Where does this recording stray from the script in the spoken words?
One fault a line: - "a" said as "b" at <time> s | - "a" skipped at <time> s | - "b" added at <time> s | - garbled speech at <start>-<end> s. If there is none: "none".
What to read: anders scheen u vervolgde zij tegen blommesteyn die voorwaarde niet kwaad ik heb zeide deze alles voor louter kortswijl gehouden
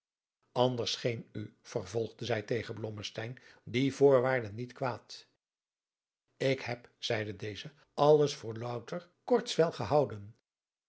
none